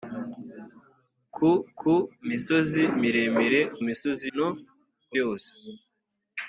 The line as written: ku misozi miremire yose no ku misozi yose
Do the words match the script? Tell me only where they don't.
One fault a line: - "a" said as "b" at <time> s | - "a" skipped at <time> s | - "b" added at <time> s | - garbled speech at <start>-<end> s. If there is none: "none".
- "ku" added at 1.8 s
- "yose" said as "misozi" at 3.9 s
- "misozi" skipped at 5.1 s